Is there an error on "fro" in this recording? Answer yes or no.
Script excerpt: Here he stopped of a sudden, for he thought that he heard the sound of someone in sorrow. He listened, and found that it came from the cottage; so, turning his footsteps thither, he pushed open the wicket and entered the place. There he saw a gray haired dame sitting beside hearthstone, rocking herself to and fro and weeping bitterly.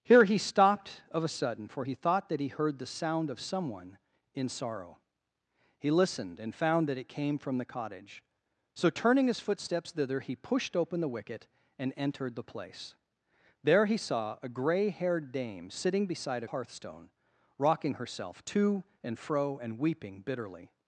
no